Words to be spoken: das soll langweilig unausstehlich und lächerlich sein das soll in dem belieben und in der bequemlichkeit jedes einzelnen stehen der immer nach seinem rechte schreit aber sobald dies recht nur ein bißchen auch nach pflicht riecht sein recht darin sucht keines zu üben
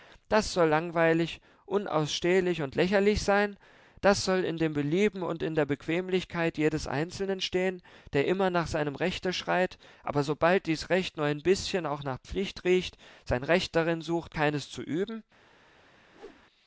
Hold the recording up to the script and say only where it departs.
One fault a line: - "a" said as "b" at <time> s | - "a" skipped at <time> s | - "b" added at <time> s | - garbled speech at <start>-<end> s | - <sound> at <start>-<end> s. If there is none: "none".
- whoosh at 16.1-16.5 s